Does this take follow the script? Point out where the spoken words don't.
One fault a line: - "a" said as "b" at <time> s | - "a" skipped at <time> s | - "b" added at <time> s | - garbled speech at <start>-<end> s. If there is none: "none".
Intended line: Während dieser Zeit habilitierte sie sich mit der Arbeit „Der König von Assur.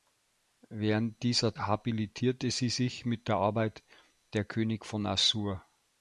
- "Zeit" skipped at 1.6 s